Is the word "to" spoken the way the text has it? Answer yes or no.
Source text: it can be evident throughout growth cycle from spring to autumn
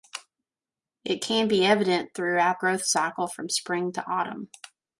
yes